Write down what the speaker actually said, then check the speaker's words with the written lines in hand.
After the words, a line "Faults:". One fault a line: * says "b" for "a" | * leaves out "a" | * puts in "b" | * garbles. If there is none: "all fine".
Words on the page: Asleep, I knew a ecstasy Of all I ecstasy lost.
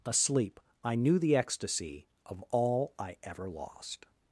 Asleep, I knew the ecstasy Of all I ever lost.
Faults:
* says "the" for "a"
* says "ever" for "ecstasy"